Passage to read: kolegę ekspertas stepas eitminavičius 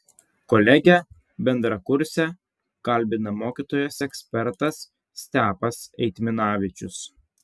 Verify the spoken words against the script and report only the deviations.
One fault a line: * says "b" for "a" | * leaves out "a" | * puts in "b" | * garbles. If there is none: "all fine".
* puts in "bendrakursę kalbina mokytojas"